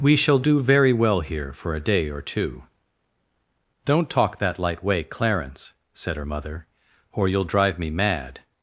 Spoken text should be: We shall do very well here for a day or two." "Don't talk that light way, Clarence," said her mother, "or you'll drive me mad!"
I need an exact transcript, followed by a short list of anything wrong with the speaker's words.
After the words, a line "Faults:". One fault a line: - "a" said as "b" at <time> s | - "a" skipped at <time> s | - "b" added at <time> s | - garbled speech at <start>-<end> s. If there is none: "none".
We shall do very well here for a day or two." "Don't talk that light way, Clarence," said her mother, "or you'll drive me mad!"
Faults:
none